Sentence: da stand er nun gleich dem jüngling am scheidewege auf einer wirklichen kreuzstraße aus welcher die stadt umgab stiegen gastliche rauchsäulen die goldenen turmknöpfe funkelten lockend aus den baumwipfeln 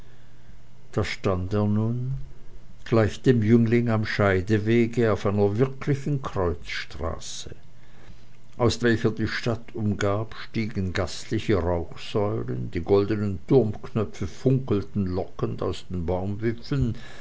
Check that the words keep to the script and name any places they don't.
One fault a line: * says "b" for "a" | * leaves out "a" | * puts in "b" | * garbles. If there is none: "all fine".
all fine